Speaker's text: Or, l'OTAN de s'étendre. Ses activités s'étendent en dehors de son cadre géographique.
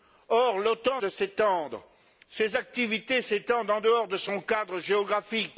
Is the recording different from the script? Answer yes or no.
no